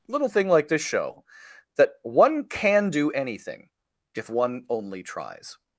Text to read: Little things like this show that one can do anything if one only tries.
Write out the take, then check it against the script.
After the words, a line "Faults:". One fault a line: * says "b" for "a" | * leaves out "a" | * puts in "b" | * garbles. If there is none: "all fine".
Little thing like this show that one can do anything if one only tries.
Faults:
* says "thing" for "things"